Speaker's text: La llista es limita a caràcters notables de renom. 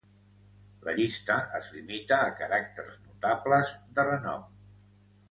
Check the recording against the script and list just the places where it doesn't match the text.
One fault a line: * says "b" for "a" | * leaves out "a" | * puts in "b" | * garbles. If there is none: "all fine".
all fine